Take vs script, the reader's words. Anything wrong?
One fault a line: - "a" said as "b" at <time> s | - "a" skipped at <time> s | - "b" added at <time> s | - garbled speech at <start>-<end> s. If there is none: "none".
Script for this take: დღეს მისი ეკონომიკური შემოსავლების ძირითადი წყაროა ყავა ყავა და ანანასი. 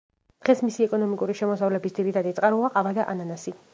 - "ყავა" skipped at 2.9 s